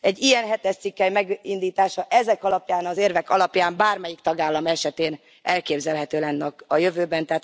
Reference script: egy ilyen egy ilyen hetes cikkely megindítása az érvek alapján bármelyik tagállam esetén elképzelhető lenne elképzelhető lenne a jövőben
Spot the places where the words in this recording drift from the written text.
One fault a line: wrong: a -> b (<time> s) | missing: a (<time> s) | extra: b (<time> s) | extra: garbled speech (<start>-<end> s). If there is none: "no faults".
missing: egy ilyen (0.5 s)
extra: ezek alapján (2.1 s)
missing: elképzelhető lenne (6.5 s)